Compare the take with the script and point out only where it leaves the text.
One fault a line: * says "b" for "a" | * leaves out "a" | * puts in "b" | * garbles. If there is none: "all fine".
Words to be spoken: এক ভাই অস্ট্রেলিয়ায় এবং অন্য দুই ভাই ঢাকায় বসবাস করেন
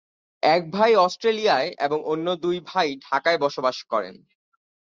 all fine